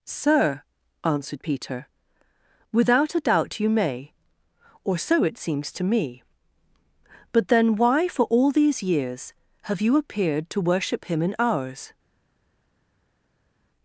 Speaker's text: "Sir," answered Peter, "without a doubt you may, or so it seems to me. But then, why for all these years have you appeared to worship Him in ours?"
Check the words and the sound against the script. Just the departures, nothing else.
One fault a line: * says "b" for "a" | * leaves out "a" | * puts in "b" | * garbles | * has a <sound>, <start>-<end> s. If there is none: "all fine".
all fine